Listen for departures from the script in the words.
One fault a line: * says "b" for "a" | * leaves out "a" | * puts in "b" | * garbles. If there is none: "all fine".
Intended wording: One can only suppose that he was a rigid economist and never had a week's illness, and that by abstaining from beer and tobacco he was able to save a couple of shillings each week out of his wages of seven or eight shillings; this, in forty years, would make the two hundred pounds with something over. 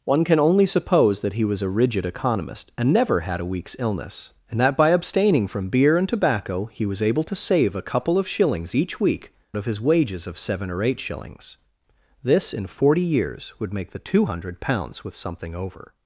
* leaves out "out"